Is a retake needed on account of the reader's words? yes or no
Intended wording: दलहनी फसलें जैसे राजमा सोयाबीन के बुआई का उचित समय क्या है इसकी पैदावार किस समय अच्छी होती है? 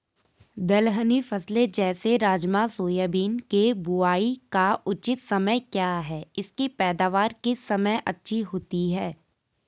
no